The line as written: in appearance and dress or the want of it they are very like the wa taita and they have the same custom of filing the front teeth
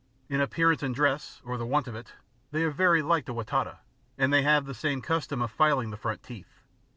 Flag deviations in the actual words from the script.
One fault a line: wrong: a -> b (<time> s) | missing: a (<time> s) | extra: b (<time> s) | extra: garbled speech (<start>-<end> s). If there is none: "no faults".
no faults